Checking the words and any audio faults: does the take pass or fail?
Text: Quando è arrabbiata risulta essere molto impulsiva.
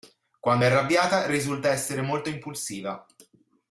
pass